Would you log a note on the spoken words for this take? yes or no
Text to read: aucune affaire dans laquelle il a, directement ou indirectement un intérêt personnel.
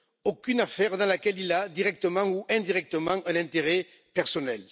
no